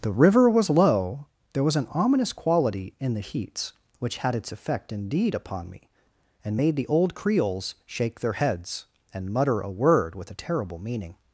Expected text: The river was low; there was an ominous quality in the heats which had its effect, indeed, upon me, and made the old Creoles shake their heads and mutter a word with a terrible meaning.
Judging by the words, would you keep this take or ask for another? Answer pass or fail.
pass